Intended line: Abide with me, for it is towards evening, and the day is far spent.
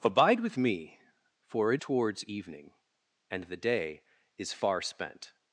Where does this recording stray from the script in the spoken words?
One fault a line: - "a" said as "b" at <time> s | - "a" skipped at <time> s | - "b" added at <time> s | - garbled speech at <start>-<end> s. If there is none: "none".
- "is" skipped at 1.8 s